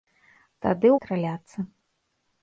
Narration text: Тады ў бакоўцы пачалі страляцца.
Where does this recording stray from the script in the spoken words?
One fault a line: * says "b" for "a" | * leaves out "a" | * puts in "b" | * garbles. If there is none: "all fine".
* leaves out "бакоўцы пачалі"